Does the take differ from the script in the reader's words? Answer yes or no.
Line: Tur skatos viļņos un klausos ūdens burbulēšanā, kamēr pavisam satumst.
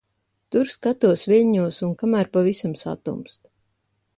yes